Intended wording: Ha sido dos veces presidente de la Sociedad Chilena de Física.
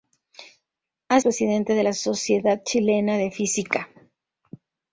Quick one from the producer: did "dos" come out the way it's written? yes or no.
no